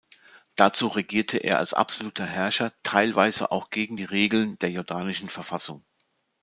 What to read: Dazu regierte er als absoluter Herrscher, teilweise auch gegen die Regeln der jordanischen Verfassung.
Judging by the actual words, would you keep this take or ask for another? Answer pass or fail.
pass